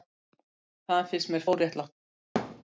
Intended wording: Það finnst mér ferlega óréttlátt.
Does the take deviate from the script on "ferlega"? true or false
true